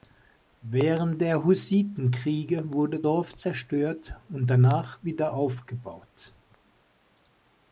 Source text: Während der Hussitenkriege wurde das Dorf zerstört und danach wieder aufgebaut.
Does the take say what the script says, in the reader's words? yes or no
no